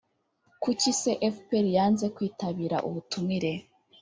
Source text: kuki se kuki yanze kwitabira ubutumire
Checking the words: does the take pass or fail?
fail